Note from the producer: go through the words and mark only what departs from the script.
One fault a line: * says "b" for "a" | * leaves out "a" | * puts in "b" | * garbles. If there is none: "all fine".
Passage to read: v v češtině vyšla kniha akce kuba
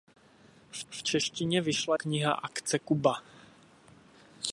all fine